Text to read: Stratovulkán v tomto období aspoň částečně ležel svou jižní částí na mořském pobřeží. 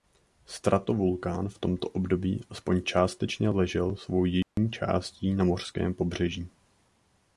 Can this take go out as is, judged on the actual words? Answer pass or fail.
pass